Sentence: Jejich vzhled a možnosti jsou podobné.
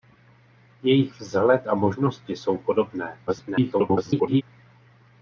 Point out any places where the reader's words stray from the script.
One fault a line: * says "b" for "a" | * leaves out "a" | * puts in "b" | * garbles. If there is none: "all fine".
* garbles